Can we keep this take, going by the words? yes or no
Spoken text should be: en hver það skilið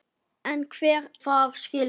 yes